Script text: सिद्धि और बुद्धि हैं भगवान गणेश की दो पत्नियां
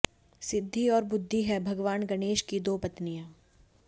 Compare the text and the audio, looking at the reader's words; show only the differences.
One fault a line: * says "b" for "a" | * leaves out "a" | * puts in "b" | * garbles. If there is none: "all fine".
all fine